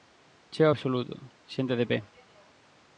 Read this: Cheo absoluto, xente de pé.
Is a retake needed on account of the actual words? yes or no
no